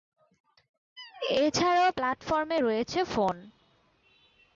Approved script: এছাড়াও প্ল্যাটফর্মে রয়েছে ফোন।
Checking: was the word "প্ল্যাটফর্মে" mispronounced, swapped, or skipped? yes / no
no